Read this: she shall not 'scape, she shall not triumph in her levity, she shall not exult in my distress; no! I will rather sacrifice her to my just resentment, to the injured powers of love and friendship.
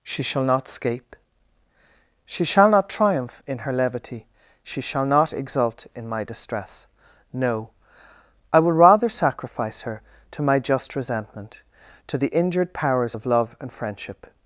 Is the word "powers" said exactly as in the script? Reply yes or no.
yes